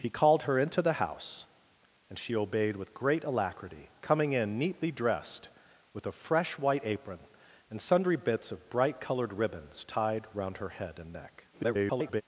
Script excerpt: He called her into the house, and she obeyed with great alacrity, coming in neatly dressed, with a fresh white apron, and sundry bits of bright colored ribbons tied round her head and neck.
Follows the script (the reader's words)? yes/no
no